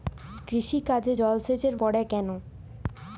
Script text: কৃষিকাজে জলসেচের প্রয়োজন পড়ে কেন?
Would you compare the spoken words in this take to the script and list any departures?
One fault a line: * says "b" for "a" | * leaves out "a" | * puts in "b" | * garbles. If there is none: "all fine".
* leaves out "প্রয়োজন"